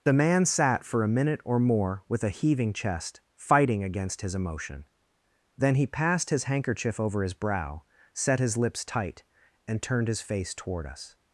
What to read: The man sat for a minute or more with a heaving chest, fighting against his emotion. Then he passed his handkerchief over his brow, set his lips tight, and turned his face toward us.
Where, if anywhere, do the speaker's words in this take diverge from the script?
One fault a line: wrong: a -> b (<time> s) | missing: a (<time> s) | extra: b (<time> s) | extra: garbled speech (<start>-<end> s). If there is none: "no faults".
no faults